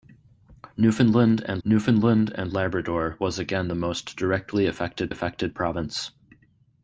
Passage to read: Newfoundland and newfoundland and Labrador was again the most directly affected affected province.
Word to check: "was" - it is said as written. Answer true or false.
true